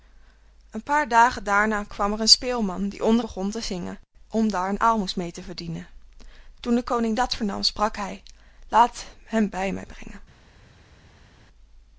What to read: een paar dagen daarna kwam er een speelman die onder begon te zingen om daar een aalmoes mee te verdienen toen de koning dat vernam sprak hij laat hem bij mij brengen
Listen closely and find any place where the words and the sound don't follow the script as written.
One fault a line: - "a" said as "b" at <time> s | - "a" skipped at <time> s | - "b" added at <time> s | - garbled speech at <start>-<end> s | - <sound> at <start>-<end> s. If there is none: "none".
none